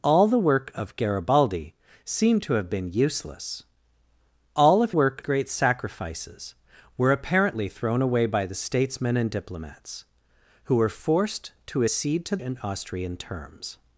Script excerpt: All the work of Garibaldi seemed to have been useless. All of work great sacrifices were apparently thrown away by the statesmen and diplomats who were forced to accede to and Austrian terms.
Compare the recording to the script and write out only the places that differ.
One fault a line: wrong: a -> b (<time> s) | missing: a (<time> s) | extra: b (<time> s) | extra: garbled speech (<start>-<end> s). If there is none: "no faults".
no faults